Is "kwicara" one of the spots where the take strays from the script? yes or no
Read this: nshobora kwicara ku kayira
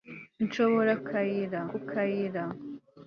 yes